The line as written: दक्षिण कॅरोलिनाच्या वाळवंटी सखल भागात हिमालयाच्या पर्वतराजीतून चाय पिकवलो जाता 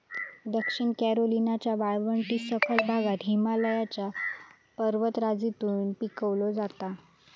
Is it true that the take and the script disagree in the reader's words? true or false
true